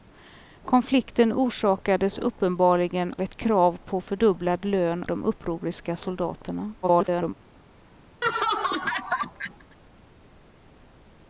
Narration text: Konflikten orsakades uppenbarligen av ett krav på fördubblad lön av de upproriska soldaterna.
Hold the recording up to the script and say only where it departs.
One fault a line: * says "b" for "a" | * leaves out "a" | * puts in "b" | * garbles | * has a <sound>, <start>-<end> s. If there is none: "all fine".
* leaves out "av"
* leaves out "av"
* garbles
* has a laugh, 8.2-9.8 s